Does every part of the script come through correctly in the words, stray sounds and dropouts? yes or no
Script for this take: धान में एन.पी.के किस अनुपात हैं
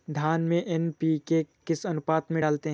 no